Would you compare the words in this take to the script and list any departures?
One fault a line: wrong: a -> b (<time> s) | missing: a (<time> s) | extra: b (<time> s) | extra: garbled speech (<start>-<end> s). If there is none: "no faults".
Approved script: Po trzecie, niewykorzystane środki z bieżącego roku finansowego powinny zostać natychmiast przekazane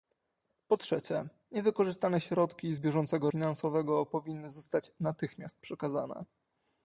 missing: roku (3.3 s)